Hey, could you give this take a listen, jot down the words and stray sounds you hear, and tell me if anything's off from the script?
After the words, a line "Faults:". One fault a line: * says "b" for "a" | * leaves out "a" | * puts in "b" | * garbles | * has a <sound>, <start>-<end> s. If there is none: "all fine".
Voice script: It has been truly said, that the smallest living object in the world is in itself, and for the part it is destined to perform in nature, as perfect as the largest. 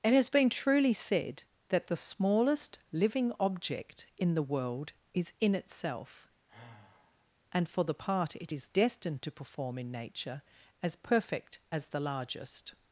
It has been truly said, that the smallest living object in the world is in itself, and for the part it is destined to perform in nature, as perfect as the largest.
Faults:
* has a sigh, 6.5-7.3 s